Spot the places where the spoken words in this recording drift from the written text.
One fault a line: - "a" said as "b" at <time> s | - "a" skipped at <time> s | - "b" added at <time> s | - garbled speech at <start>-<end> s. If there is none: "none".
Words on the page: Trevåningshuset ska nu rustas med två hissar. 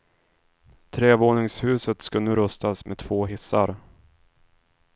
none